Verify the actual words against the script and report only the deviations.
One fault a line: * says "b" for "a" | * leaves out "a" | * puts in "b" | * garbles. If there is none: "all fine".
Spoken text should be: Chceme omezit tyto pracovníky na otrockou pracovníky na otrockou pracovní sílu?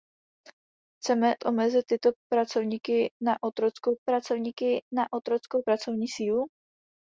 all fine